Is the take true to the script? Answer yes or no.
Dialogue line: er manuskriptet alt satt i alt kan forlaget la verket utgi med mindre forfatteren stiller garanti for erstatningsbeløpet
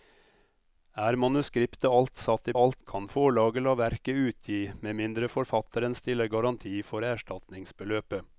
yes